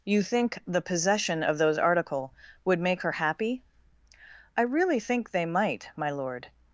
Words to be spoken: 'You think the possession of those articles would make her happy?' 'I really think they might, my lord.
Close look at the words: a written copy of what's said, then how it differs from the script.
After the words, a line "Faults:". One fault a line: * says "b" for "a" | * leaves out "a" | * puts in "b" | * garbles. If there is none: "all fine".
'You think the possession of those article would make her happy?' 'I really think they might, my lord.
Faults:
* says "article" for "articles"